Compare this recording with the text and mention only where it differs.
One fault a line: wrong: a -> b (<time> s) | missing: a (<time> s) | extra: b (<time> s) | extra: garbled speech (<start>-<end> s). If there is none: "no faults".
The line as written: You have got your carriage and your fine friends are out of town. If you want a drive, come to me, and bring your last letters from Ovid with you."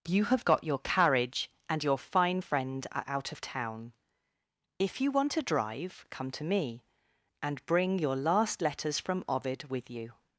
wrong: friends -> friend (2.4 s)